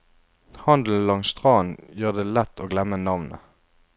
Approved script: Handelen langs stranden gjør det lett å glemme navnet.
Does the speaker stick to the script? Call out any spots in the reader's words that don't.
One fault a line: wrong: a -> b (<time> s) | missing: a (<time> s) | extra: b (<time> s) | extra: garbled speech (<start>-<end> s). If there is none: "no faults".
no faults